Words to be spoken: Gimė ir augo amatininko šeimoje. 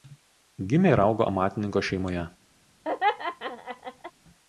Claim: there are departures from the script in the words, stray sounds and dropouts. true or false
true